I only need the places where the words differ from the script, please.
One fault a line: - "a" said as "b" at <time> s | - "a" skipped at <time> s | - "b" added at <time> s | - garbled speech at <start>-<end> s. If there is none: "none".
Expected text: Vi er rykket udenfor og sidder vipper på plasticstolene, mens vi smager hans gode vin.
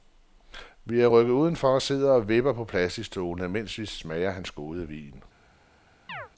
- "og" added at 2.1 s